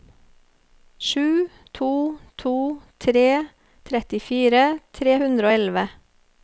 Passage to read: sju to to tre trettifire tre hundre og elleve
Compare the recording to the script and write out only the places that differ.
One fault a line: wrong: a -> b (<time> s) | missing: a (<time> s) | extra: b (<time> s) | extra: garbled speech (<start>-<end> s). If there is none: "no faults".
no faults